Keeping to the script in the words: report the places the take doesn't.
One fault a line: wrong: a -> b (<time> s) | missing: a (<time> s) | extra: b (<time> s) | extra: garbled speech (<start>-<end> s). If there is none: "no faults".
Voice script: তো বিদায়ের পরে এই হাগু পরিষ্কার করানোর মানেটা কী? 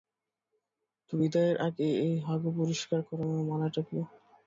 wrong: পরে -> আগে (1.7 s)